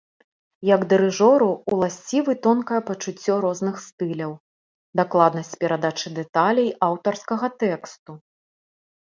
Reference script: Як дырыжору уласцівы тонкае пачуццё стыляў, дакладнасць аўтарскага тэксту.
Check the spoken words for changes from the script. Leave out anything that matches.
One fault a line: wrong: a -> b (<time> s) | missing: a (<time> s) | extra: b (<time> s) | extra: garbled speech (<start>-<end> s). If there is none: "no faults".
extra: розных (3.5 s)
extra: перадачы дэталей (5.7 s)